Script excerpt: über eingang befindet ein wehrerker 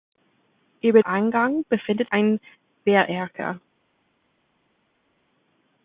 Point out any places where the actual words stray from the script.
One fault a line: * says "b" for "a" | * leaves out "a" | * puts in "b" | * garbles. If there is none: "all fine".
all fine